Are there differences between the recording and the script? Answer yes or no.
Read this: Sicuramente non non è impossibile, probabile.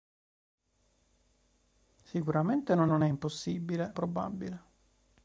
no